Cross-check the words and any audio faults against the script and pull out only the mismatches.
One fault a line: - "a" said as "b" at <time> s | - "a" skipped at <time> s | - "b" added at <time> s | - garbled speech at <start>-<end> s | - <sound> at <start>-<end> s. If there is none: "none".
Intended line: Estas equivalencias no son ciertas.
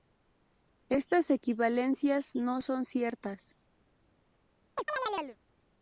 - chirp at 4.8-5.4 s